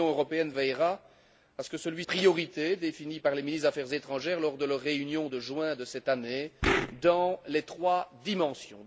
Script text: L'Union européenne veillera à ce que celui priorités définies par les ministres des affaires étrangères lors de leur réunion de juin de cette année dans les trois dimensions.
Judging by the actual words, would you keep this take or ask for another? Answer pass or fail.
pass